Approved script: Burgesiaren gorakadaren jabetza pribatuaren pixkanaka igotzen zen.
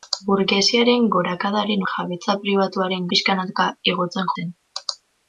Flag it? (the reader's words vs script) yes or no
no